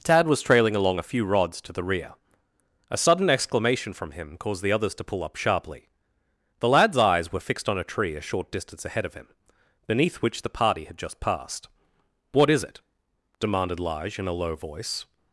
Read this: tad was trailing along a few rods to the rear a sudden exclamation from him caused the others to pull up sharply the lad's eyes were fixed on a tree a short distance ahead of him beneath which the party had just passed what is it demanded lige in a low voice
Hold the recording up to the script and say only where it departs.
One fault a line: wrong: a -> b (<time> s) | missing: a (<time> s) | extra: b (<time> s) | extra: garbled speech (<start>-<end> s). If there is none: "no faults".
no faults